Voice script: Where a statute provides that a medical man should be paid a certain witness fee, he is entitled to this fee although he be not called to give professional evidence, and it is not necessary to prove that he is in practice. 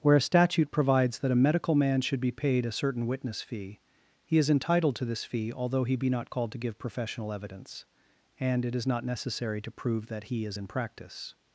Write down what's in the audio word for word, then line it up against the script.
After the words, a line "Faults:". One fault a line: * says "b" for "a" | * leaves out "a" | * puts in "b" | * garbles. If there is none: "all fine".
Where a statute provides that a medical man should be paid a certain witness fee, he is entitled to this fee although he be not called to give professional evidence, and it is not necessary to prove that he is in practice.
Faults:
all fine